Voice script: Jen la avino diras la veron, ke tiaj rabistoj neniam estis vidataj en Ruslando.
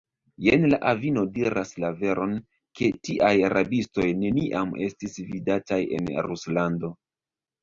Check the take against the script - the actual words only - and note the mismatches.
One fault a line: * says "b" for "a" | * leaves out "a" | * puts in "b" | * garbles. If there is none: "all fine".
all fine